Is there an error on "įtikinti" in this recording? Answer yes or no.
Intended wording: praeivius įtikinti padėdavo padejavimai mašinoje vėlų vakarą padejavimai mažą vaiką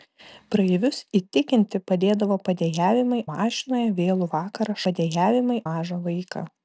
no